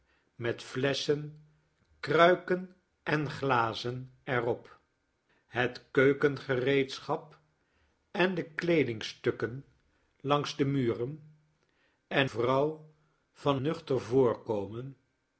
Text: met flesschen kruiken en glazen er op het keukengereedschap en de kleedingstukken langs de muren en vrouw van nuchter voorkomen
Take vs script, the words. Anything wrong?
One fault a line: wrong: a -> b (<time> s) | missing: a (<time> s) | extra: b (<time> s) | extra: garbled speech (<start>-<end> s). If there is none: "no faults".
no faults